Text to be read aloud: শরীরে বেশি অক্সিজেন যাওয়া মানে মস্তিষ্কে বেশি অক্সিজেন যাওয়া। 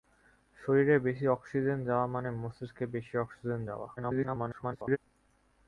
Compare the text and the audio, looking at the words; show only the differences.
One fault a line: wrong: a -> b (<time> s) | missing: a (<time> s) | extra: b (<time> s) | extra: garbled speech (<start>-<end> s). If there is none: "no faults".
extra: garbled speech (4.0-5.0 s)